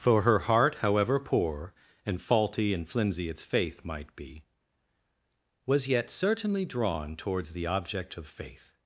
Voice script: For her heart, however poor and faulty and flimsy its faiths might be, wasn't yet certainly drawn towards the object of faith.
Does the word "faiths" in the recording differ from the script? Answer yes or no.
yes